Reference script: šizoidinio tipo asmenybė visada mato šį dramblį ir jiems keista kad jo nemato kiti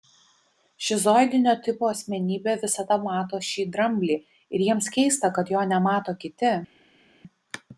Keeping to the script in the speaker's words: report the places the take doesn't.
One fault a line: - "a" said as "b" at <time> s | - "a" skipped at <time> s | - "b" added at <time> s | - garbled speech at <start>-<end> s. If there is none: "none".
none